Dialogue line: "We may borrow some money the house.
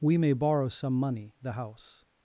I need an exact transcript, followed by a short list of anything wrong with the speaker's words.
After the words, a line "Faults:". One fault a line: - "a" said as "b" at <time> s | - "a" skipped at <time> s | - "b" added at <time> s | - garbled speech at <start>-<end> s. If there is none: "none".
"We may borrow some money the house.
Faults:
none